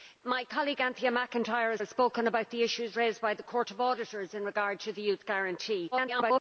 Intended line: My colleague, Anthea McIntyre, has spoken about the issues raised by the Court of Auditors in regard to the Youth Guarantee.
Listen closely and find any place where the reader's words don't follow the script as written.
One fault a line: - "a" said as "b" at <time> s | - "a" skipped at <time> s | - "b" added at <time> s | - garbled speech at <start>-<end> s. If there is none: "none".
- "has" added at 1.8 s
- garbled speech at 5.9-6.4 s